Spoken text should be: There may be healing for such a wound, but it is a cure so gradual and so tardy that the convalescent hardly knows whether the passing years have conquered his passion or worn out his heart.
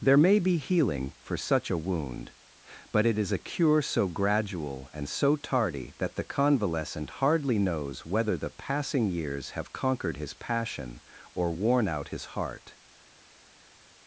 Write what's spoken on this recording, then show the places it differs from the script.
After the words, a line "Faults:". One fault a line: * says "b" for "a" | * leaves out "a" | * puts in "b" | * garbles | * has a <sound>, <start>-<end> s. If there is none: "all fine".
There may be healing for such a wound, but it is a cure so gradual and so tardy that the convalescent hardly knows whether the passing years have conquered his passion or worn out his heart.
Faults:
all fine